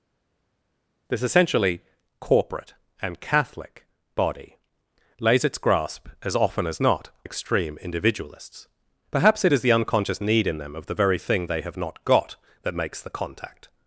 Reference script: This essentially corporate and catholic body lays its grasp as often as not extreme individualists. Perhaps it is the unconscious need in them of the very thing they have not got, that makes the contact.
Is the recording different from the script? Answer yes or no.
no